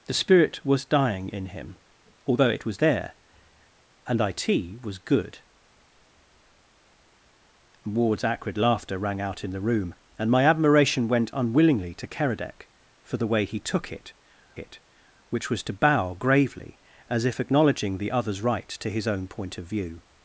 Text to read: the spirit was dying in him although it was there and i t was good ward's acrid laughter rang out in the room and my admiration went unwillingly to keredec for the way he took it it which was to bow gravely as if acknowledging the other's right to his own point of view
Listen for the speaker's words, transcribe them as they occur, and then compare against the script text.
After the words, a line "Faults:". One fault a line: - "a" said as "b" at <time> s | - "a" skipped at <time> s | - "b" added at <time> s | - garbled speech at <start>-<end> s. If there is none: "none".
the spirit was dying in him although it was there and i t was good ward's acrid laughter rang out in the room and my admiration went unwillingly to keredec for the way he took it it which was to bow gravely as if acknowledging the other's right to his own point of view
Faults:
none